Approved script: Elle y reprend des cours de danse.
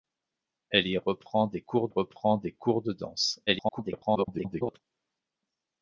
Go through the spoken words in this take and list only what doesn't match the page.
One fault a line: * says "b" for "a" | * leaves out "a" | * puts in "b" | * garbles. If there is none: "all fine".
* puts in "reprend des cours"
* garbles